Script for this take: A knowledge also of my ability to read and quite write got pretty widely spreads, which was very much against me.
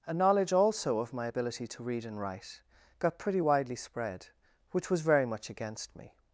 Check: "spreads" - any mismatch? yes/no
yes